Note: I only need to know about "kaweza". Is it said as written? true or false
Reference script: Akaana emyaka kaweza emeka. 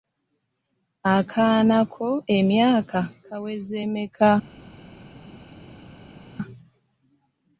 true